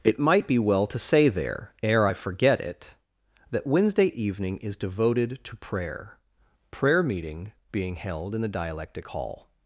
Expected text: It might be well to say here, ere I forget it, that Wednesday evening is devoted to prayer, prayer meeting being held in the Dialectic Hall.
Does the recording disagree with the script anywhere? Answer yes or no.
yes